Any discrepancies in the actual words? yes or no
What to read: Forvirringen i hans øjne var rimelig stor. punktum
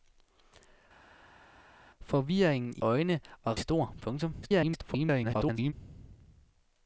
yes